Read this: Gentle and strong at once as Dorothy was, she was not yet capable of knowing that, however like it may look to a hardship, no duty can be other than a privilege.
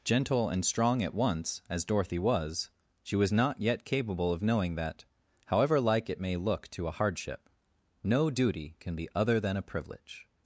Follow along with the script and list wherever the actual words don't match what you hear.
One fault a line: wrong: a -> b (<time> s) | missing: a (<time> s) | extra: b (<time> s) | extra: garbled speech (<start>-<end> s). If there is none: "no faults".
no faults